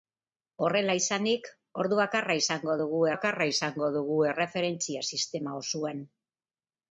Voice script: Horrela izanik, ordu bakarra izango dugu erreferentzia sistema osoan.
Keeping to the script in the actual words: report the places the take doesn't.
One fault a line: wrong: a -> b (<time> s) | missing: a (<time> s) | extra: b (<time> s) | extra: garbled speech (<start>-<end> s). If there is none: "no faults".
extra: bakarra izango dugu (3.1 s)